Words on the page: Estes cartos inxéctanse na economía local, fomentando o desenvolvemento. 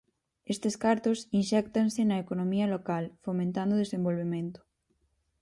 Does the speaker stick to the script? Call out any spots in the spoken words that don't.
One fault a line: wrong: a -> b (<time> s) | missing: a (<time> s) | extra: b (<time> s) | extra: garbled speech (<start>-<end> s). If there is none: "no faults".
no faults